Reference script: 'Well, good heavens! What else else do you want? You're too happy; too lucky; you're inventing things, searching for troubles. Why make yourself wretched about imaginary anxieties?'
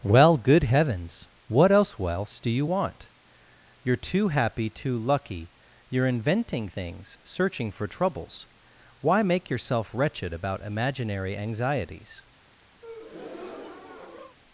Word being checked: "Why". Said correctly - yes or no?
yes